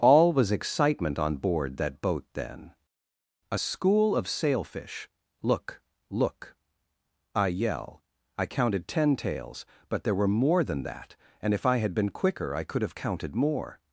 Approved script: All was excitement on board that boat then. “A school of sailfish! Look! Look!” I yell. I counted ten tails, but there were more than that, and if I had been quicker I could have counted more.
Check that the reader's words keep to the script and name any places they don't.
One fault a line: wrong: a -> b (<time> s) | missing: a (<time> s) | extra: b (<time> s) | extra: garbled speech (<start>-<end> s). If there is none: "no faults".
no faults